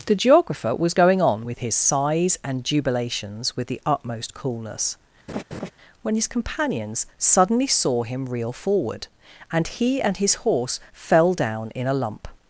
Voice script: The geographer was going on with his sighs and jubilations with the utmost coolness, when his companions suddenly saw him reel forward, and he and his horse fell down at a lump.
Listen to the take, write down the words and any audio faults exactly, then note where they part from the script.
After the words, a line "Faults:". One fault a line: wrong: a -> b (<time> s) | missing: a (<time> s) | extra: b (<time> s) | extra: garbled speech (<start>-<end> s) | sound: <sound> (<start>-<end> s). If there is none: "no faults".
The geographer was going on with his sighs and jubilations with the utmost coolness, when his companions suddenly saw him reel forward, and he and his horse fell down in a lump.
Faults:
sound: laugh (5.3-5.7 s)
wrong: at -> in (11.7 s)